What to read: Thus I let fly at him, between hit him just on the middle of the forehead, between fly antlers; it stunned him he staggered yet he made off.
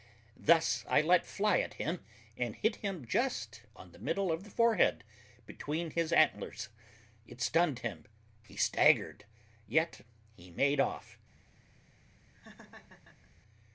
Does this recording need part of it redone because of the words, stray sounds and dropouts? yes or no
yes